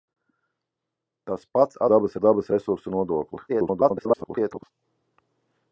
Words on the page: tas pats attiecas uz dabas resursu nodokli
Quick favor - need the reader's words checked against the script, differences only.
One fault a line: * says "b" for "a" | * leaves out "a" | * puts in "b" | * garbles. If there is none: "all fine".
* says "dabas" for "attiecas"
* garbles